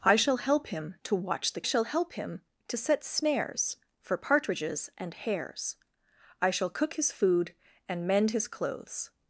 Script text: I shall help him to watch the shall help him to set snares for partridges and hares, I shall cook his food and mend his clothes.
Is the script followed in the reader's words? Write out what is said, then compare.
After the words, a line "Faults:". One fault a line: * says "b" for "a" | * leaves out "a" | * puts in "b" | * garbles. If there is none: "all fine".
I shall help him to watch the shall help him to set snares for partridges and hares, I shall cook his food and mend his clothes.
Faults:
all fine